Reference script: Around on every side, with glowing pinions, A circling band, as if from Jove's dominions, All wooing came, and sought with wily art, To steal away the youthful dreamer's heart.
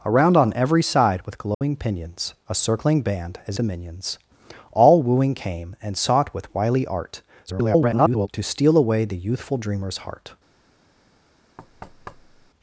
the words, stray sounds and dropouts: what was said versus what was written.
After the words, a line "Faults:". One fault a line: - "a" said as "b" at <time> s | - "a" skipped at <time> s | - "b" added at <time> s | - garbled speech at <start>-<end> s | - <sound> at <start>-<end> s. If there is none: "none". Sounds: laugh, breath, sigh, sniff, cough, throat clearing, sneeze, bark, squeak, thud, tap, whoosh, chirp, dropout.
Around on every side, with glowing pinions, A circling band, as dominions, All wooing came, and sought with wily art, [garbled] To steal away the youthful dreamer's heart.
Faults:
- dropout at 1.5-1.6 s
- "if from Jove's" skipped at 3.6 s
- garbled speech at 7.5-8.3 s
- thud at 11.6-12.5 s